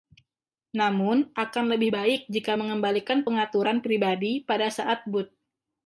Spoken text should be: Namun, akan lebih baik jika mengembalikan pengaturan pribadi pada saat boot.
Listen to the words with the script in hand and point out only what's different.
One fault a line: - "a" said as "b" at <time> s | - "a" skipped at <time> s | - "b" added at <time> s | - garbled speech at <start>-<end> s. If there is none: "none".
none